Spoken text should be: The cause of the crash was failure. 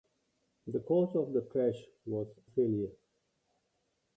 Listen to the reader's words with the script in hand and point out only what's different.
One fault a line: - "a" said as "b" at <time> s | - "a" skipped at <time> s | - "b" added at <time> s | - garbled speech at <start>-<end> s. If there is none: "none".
none